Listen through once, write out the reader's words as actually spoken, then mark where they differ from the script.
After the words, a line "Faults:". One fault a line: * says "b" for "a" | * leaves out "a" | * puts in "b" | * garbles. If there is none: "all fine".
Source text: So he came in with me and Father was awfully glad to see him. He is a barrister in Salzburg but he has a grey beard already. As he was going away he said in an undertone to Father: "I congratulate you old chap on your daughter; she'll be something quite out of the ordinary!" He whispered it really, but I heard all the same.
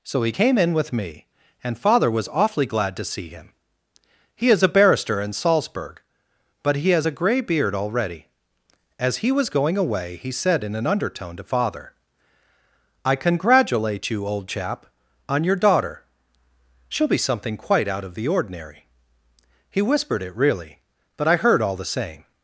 So he came in with me and Father was awfully glad to see him. He is a barrister in Salzburg but he has a grey beard already. As he was going away he said in an undertone to Father: "I congratulate you old chap on your daughter; she'll be something quite out of the ordinary!" He whispered it really, but I heard all the same.
Faults:
all fine